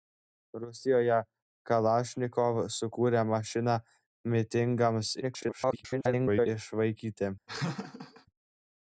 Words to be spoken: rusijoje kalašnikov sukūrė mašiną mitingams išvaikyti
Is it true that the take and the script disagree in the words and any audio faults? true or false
true